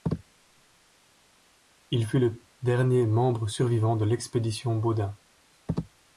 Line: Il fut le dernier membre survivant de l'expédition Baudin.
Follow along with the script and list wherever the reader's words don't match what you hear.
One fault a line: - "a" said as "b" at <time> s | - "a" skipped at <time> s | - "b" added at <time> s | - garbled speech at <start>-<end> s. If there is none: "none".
none